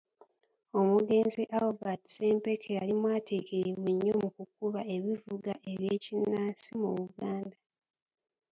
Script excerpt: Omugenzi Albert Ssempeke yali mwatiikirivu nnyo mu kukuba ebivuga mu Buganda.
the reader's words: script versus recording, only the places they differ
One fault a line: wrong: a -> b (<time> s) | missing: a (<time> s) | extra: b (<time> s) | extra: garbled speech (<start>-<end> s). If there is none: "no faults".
extra: eby'ekinnansi (5.7 s)